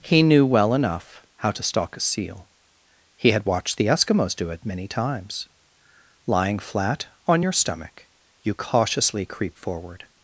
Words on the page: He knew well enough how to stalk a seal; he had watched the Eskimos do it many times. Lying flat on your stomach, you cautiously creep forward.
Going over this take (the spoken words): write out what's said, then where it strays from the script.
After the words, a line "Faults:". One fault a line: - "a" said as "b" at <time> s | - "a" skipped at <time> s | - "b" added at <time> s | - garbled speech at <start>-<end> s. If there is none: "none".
He knew well enough how to stalk a seal; he had watched the Eskimos do it many times. Lying flat on your stomach, you cautiously creep forward.
Faults:
none